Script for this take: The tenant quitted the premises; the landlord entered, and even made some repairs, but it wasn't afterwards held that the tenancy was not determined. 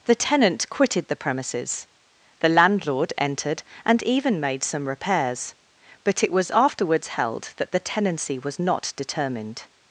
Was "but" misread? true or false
false